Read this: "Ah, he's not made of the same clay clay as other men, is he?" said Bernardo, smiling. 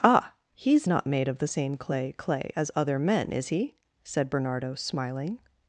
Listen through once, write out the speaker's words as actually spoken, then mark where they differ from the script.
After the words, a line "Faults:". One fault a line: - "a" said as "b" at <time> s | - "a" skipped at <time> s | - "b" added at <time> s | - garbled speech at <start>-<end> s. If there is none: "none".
"Ah, he's not made of the same clay clay as other men, is he?" said Bernardo, smiling.
Faults:
none